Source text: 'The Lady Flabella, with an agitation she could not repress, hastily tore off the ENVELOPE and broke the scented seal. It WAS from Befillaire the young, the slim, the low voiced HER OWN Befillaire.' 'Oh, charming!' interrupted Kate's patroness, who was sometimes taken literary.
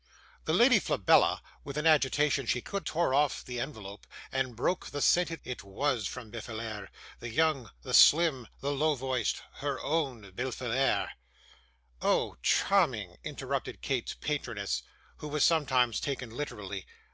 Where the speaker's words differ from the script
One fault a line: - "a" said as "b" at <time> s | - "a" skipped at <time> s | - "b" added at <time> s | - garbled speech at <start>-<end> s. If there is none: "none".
- "not repress hastily" skipped at 2.8 s
- "seal" skipped at 5.4 s